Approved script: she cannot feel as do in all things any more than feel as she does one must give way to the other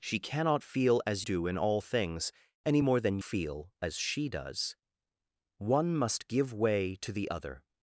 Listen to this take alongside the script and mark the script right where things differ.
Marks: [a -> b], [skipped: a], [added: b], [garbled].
she cannot feel as do in all things any more than feel as she does one must give way to the other